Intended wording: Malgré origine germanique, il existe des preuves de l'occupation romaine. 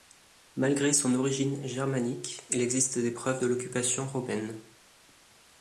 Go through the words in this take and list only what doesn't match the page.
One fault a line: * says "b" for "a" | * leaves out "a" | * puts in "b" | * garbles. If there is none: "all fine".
* puts in "son"